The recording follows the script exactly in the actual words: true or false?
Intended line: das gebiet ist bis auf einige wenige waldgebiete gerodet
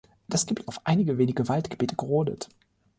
false